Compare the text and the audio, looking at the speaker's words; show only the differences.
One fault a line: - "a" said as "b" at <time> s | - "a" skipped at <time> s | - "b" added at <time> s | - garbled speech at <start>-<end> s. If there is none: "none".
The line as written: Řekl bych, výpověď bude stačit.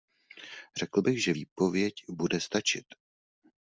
- "že" added at 1.2 s